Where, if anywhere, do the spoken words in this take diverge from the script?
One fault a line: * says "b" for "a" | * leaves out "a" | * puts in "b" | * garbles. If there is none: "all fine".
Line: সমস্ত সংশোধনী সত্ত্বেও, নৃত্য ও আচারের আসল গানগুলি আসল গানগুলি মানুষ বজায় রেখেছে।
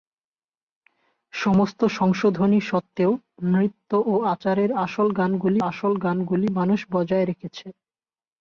all fine